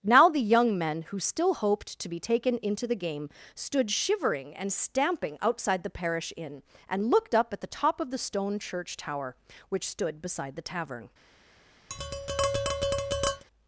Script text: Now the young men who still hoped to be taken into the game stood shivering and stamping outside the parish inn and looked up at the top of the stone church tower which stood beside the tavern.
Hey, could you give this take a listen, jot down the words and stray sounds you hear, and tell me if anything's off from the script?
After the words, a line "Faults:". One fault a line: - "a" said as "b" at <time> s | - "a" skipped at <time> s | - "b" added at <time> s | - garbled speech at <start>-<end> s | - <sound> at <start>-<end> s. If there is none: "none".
Now the young men who still hoped to be taken into the game stood shivering and stamping outside the parish inn and looked up at the top of the stone church tower which stood beside the tavern.
Faults:
- tap at 11.9-13.4 s